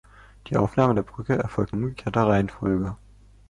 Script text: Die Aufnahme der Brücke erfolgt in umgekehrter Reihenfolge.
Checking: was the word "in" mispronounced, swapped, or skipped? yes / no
yes